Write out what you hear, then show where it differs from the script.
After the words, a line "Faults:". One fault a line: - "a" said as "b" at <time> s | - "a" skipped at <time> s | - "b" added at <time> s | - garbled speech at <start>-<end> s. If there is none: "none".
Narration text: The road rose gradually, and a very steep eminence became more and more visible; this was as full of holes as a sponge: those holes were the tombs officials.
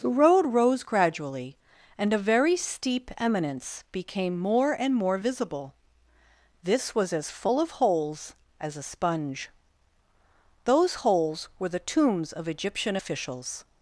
The road rose gradually, and a very steep eminence became more and more visible; this was as full of holes as a sponge: those holes were the tombs of Egyptian officials.
Faults:
- "of Egyptian" added at 12.3 s